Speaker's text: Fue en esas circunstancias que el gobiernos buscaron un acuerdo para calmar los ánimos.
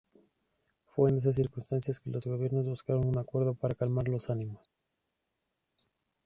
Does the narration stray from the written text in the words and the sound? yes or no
yes